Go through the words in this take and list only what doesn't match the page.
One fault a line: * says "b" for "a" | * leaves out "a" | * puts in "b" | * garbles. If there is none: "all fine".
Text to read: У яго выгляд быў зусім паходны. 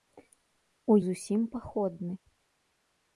* leaves out "яго выгляд быў"